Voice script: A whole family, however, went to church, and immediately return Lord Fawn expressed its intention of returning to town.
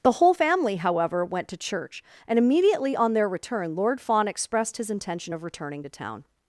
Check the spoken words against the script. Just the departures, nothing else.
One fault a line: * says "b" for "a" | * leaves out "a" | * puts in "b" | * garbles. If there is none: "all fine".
* says "The" for "A"
* puts in "on their"
* says "his" for "its"